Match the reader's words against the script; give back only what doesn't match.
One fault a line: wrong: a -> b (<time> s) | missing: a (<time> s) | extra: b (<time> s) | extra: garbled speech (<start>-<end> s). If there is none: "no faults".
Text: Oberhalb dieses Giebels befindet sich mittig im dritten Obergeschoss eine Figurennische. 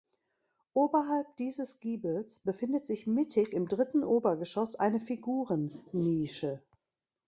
no faults